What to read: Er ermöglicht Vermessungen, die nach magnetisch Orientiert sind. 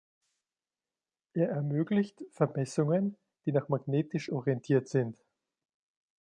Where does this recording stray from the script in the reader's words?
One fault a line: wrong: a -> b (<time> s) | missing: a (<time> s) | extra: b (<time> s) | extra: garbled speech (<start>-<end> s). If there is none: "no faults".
no faults